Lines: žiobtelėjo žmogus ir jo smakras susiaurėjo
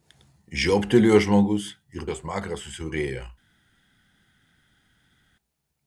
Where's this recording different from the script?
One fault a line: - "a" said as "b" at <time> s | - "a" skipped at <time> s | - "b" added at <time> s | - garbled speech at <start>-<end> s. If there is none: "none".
none